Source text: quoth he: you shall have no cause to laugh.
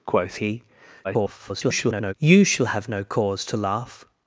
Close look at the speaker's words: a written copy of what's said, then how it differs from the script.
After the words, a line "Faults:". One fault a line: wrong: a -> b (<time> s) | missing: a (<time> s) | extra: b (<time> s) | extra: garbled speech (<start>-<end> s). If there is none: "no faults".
quoth he: [garbled] you shall have no cause to laugh.
Faults:
extra: garbled speech (1.0-2.1 s)